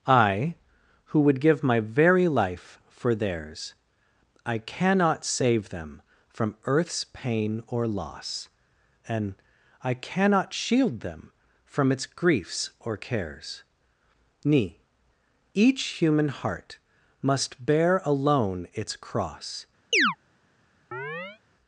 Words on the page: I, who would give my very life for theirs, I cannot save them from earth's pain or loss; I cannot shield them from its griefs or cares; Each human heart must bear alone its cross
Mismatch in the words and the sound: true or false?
true